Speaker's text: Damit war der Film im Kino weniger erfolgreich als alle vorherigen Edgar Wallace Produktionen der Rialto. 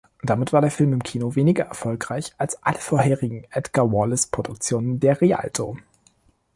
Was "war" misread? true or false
false